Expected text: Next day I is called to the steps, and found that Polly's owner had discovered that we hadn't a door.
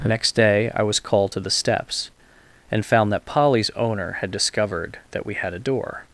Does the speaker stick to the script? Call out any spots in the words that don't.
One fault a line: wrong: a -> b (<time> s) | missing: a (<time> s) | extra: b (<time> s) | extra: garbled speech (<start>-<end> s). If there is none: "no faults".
wrong: is -> was (0.8 s)
wrong: hadn't -> had (5.3 s)